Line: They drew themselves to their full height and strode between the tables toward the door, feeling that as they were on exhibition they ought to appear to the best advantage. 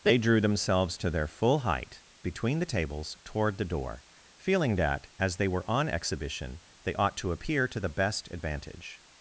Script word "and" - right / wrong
wrong